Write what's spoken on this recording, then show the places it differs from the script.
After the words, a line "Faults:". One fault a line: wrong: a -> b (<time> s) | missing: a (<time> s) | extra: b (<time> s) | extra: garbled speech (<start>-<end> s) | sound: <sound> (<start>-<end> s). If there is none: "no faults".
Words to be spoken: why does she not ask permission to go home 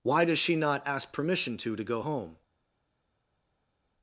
why does she not ask permission to to go home
Faults:
extra: to (1.8 s)